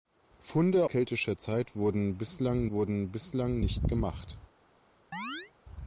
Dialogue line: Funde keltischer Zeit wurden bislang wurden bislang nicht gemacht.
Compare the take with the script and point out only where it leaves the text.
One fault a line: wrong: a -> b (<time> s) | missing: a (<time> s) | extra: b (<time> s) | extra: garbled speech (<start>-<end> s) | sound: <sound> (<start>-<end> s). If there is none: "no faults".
sound: chirp (5.1-5.5 s)